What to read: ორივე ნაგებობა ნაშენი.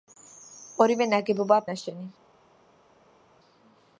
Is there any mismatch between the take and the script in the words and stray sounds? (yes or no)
no